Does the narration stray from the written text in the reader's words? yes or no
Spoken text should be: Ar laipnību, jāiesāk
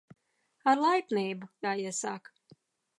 no